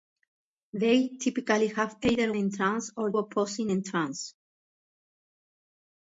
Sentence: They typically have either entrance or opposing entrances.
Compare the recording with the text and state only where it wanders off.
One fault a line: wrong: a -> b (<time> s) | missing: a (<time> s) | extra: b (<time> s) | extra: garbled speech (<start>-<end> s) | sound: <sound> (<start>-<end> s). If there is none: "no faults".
no faults